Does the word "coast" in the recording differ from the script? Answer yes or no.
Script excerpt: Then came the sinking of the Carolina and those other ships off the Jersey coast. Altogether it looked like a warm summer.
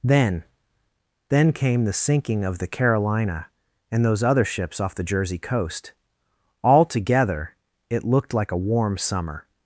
no